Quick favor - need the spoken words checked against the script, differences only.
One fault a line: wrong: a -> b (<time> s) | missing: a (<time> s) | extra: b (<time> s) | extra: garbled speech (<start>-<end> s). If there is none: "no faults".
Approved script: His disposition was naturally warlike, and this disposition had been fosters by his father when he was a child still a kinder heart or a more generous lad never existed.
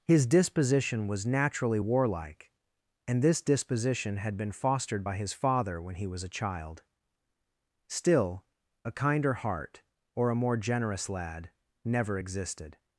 wrong: fosters -> fostered (4.5 s)